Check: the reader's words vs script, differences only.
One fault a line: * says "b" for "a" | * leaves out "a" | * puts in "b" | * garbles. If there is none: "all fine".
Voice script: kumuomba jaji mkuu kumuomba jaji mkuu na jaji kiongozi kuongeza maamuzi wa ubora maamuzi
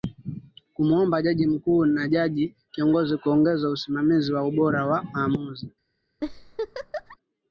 * leaves out "kumuomba jaji mkuu"
* says "usimamizi" for "maamuzi"
* puts in "wa"